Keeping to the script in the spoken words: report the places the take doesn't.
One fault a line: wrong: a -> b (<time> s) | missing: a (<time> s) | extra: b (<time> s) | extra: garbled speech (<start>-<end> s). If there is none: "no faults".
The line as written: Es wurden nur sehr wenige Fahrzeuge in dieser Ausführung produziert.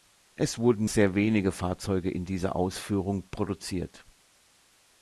missing: nur (0.9 s)